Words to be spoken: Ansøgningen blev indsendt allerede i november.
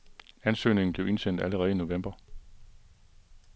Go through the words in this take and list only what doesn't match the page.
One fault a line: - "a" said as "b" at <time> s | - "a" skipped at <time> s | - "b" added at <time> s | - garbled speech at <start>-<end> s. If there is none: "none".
none